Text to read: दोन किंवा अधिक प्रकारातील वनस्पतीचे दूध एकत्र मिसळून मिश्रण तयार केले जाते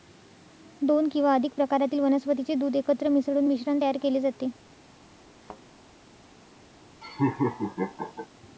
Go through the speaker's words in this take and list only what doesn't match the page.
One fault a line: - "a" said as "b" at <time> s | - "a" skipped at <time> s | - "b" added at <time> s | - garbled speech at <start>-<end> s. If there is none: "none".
none